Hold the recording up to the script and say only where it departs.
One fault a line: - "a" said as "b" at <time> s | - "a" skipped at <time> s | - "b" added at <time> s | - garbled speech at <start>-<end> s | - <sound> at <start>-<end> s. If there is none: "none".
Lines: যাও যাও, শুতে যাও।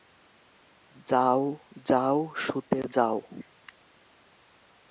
none